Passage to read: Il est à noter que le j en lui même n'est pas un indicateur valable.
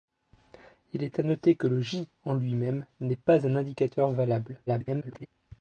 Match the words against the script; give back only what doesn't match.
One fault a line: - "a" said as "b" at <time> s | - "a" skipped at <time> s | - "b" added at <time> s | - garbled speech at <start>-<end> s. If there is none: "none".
- garbled speech at 4.7-5.3 s